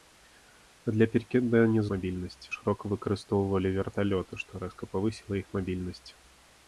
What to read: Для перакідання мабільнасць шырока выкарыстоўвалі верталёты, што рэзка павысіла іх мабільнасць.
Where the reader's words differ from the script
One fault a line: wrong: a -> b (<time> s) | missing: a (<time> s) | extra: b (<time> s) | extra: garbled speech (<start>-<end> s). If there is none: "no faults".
no faults